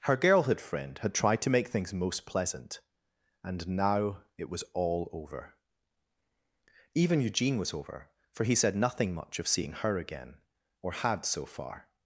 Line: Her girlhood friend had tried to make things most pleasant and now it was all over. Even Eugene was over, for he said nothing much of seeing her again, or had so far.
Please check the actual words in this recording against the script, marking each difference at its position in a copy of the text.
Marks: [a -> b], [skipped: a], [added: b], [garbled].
Her girlhood friend had tried to make things most pleasant and now it was all over. Even Eugene was over, for he said nothing much of seeing her again, or had so far.